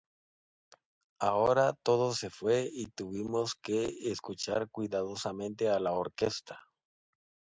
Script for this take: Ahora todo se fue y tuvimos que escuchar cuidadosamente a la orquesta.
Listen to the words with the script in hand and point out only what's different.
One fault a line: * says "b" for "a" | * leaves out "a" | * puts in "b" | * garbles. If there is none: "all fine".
all fine